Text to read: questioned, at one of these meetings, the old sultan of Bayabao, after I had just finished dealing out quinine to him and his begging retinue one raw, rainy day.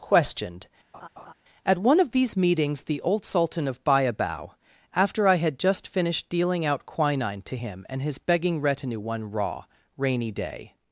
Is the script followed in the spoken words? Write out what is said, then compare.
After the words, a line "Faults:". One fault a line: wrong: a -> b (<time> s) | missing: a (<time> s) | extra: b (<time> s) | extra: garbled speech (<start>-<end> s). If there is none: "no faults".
questioned, at one of these meetings, the old sultan of Bayabao, after I had just finished dealing out quinine to him and his begging retinue one raw, rainy day.
Faults:
no faults